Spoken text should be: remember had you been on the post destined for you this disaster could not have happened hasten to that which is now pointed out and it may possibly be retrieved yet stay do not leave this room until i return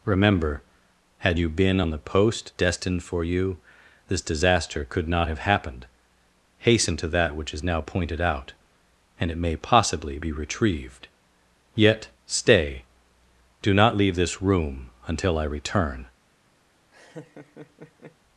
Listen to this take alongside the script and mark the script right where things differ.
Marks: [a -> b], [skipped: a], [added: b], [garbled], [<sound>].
remember had you been on the post destined for you this disaster could not have happened hasten to that which is now pointed out and it may possibly be retrieved yet stay do not leave this room until i return [laugh]